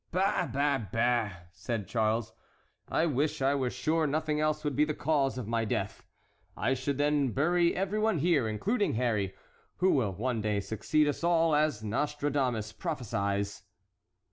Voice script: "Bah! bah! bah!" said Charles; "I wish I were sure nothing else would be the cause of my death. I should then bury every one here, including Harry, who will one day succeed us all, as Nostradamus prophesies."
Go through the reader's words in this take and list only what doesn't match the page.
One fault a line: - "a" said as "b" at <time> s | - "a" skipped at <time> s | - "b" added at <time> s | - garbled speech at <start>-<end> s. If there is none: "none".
none